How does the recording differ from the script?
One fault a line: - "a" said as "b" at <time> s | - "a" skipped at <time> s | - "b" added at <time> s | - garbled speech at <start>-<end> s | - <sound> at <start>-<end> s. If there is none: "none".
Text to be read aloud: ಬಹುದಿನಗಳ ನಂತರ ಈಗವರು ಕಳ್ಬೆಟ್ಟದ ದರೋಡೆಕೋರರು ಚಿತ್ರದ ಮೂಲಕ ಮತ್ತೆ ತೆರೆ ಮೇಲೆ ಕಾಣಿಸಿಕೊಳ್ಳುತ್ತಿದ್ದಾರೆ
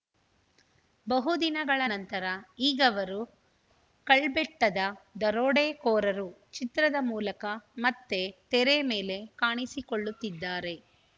none